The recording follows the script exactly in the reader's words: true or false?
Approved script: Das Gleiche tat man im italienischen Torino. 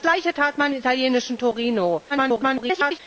false